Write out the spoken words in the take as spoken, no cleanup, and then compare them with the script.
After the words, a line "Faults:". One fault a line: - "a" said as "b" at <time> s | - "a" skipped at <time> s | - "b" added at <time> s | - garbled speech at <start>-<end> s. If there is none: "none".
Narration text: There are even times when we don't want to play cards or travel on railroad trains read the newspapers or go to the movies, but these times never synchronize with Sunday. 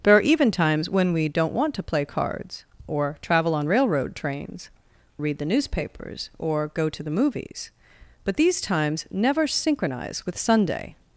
There are even times when we don't want to play cards or travel on railroad trains read the newspapers or go to the movies, but these times never synchronize with Sunday.
Faults:
none